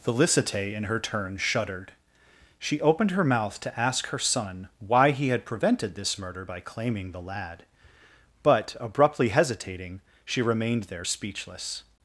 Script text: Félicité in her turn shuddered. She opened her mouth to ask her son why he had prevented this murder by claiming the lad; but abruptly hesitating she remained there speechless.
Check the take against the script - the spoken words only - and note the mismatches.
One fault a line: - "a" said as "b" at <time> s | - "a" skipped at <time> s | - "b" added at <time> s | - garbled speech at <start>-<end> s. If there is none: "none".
none